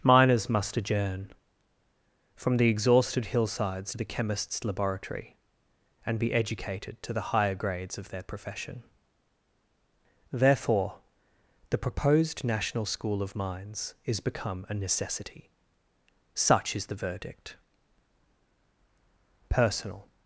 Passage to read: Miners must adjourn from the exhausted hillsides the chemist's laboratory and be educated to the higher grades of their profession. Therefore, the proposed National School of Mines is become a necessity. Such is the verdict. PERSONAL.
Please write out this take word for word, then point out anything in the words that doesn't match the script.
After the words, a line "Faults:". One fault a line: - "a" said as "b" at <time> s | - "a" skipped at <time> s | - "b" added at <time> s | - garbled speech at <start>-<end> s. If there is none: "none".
Miners must adjourn from the exhausted hillsides the chemist's laboratory and be educated to the higher grades of their profession. Therefore, the proposed National School of Mines is become a necessity. Such is the verdict. PERSONAL.
Faults:
none